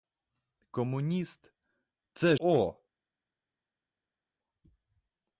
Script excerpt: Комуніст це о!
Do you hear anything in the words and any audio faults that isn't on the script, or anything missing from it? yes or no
no